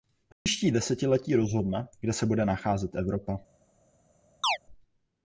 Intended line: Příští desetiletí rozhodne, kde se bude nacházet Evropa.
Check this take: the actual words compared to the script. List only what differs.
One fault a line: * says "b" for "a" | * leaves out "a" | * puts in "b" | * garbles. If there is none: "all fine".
all fine